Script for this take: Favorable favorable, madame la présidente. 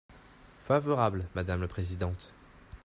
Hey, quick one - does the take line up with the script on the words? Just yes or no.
no